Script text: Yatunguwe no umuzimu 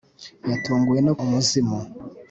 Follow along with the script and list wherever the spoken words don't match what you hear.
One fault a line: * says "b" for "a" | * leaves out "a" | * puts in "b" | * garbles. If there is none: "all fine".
all fine